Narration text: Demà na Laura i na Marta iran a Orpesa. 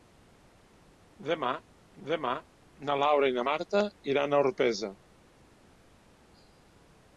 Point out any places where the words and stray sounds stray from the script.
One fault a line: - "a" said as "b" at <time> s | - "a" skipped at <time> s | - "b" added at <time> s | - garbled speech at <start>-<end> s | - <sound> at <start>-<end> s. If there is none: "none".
- "demà" added at 2.1 s